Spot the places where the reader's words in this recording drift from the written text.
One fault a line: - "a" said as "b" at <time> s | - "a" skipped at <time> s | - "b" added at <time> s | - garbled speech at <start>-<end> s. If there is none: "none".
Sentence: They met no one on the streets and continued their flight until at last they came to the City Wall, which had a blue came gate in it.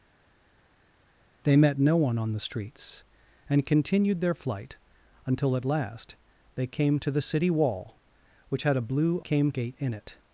none